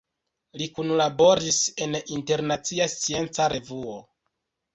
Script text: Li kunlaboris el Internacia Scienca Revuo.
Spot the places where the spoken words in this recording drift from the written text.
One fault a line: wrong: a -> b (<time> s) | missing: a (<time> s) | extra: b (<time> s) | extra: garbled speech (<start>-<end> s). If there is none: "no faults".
wrong: el -> en (1.9 s)